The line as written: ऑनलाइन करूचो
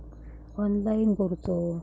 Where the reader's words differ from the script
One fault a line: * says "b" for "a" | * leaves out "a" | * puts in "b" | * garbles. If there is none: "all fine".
all fine